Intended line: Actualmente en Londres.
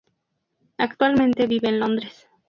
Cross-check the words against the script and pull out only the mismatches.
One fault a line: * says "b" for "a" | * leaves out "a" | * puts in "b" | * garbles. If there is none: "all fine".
* puts in "vive"